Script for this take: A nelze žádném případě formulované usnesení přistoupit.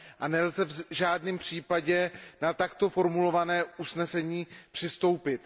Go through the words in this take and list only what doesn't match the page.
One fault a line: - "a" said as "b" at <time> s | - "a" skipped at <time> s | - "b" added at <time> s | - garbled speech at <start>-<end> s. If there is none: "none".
- "v" added at 0.7 s
- "na takto" added at 2.4 s